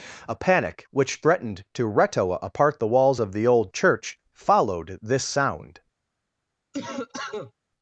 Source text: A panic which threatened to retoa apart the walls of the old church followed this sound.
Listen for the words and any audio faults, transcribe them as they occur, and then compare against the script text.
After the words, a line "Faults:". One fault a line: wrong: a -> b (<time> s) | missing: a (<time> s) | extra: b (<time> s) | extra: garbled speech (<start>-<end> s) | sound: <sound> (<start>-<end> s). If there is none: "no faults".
A panic which threatened to retoa apart the walls of the old church followed this sound.
Faults:
sound: cough (6.7-7.5 s)